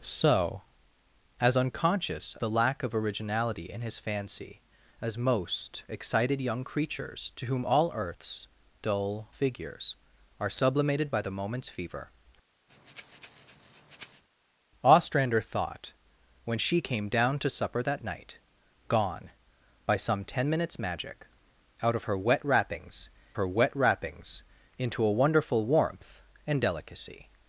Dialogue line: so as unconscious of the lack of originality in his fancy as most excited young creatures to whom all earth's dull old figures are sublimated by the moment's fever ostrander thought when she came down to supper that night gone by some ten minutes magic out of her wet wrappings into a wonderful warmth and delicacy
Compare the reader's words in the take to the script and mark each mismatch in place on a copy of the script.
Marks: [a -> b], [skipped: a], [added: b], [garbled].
so as unconscious [skipped: of] the lack of originality in his fancy as most excited young creatures to whom all earth's dull [skipped: old] figures are sublimated by the moment's fever ostrander thought when she came down to supper that night gone by some ten minutes magic out of her wet wrappings [added: her wet wrappings] into a wonderful warmth and delicacy